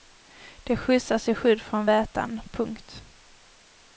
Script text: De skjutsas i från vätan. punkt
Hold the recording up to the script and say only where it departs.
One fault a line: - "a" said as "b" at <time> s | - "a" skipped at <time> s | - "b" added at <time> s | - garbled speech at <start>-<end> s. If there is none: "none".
- "skydd" added at 1.4 s